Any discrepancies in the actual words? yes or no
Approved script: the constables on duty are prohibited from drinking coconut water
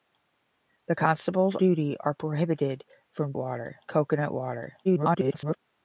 yes